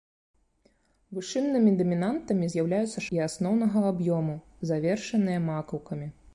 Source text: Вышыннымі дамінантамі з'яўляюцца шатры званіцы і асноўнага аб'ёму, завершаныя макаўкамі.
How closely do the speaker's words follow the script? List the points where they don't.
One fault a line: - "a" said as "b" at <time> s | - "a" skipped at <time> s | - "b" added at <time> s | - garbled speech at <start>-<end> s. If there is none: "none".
- "шатры званіцы" skipped at 3.0 s